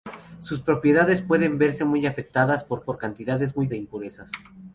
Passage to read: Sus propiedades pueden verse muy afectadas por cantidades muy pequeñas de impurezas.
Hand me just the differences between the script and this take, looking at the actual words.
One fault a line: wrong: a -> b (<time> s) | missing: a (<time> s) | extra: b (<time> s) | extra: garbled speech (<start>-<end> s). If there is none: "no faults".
extra: por (2.8 s)
missing: pequeñas (3.7 s)